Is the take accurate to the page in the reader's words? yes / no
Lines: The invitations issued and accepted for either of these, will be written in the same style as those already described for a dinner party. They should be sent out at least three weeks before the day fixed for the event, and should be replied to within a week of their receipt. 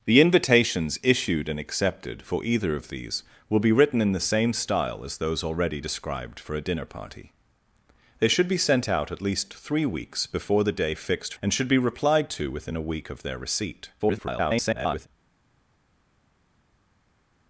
no